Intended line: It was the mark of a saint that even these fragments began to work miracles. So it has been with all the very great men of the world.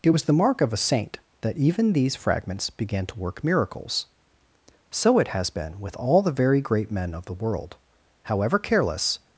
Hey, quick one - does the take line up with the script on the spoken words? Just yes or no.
no